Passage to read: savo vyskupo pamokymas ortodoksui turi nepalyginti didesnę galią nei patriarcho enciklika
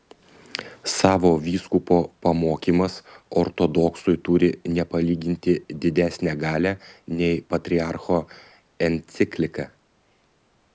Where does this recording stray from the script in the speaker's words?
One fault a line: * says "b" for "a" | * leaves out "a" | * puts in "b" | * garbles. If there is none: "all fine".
all fine